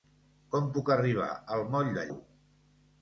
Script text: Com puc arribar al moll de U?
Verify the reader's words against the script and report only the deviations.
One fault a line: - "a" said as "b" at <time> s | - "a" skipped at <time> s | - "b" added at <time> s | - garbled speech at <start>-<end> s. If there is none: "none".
none